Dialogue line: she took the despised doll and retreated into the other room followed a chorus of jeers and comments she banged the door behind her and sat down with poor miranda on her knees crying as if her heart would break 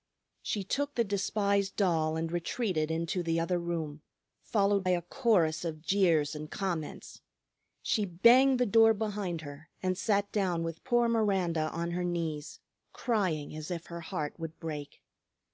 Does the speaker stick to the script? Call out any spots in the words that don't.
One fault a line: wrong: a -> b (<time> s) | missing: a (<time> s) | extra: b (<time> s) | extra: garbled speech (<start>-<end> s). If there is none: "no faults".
no faults